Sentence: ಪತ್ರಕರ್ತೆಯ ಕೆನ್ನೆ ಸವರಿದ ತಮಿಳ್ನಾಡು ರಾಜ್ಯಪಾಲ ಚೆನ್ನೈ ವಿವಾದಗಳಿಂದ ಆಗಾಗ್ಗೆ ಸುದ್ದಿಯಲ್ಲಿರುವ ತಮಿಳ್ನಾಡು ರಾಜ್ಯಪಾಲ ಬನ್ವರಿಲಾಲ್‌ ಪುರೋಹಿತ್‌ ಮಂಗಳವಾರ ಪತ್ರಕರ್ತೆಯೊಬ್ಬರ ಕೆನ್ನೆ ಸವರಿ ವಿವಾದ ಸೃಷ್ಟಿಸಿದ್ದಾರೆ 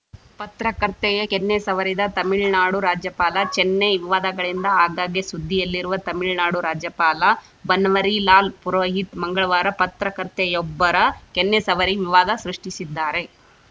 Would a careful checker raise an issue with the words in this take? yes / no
no